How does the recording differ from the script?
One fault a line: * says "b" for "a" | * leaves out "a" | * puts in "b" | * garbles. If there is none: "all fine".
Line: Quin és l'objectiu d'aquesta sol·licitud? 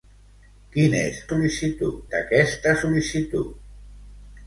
* says "sol·licitud" for "l'objectiu"